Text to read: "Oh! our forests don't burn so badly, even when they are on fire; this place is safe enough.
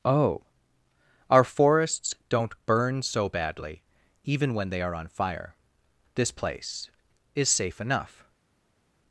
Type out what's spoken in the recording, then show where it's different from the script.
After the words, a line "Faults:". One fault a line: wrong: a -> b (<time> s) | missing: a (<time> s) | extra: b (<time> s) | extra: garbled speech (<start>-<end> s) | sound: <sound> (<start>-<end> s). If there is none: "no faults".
"Oh! our forests don't burn so badly, even when they are on fire; this place is safe enough.
Faults:
no faults